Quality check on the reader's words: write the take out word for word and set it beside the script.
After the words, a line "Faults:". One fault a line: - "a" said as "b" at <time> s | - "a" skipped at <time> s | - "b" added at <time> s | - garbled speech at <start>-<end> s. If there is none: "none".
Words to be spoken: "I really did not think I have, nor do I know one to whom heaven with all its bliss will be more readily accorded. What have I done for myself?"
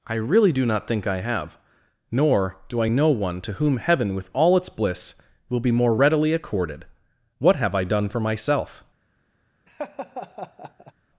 "I really do not think I have, nor do I know one to whom heaven with all its bliss will be more readily accorded. What have I done for myself?"
Faults:
- "did" said as "do" at 0.5 s